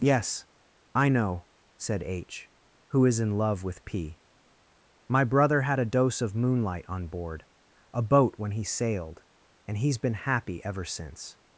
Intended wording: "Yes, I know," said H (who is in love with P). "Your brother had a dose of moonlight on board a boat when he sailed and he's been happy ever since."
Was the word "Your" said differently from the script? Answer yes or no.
yes